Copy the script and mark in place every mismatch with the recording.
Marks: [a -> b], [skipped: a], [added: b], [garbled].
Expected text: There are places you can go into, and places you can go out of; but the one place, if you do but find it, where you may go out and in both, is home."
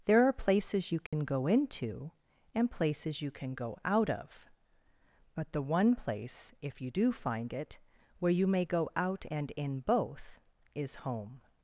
There are places you can go into, and places you can go out of; but the one place, if you do [skipped: but] find it, where you may go out and in both, is home."